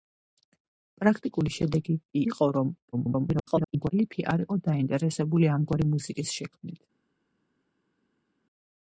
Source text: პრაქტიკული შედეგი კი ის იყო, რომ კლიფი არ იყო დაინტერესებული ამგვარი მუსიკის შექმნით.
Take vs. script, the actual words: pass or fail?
fail